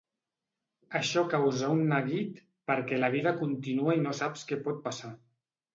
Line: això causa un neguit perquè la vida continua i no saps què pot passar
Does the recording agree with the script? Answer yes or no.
yes